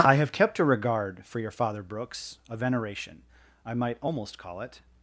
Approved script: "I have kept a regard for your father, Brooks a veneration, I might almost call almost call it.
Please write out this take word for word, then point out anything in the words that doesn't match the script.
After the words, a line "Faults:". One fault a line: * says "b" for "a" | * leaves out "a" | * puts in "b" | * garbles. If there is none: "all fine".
"I have kept a regard for your father, Brooks a veneration, I might almost call it.
Faults:
* leaves out "almost call"